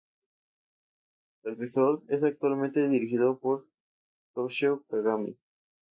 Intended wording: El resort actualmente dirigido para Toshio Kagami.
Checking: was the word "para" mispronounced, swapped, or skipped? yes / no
yes